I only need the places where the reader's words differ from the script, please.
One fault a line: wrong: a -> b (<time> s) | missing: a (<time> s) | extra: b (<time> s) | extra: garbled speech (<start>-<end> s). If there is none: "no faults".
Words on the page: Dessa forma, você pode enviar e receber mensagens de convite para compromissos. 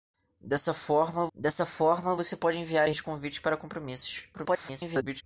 extra: dessa forma (1.3 s)
missing: receber mensagens (2.9 s)
extra: garbled speech (4.3-5.2 s)